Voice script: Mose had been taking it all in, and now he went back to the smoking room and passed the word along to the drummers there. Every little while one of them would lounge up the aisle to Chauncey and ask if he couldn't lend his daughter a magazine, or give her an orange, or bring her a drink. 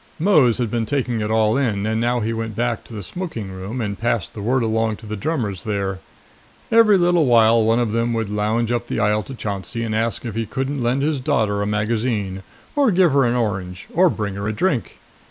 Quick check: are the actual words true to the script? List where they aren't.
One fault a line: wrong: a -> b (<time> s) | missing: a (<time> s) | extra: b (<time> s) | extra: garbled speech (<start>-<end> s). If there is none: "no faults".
no faults